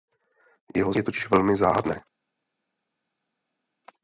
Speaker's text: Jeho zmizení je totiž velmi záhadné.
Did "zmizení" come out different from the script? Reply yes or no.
yes